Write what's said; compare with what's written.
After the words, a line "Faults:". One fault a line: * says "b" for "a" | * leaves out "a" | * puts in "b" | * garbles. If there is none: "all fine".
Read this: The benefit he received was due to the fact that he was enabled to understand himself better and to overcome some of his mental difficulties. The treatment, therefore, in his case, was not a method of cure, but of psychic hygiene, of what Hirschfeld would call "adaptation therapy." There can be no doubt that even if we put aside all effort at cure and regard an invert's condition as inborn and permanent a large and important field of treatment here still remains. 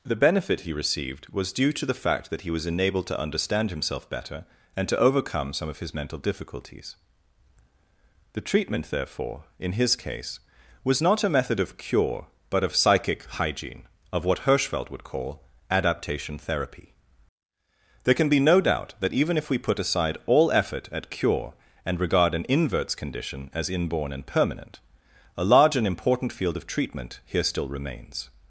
The benefit he received was due to the fact that he was enabled to understand himself better and to overcome some of his mental difficulties. The treatment, therefore, in his case, was not a method of cure, but of psychic hygiene, of what Hirschfeld would call "adaptation therapy." There can be no doubt that even if we put aside all effort at cure and regard an invert's condition as inborn and permanent a large and important field of treatment here still remains.
Faults:
all fine